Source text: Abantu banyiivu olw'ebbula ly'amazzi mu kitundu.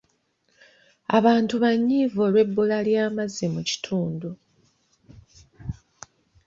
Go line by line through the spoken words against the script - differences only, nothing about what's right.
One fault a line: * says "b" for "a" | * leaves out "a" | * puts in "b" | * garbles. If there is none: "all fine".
all fine